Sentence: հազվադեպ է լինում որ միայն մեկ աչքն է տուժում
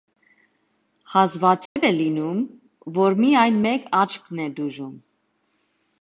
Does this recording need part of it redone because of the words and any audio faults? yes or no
yes